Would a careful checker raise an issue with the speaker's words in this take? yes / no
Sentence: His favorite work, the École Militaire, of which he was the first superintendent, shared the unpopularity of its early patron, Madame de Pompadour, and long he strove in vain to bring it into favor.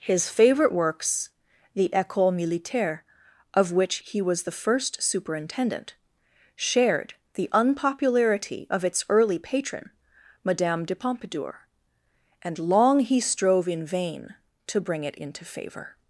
yes